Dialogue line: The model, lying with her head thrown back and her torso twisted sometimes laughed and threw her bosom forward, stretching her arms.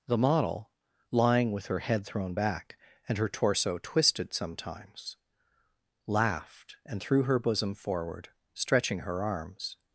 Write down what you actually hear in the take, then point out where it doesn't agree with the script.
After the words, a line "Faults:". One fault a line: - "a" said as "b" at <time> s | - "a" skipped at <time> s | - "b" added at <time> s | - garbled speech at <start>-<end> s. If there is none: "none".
The model, lying with her head thrown back and her torso twisted sometimes laughed and threw her bosom forward, stretching her arms.
Faults:
none